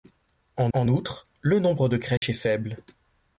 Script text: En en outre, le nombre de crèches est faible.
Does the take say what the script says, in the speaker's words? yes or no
yes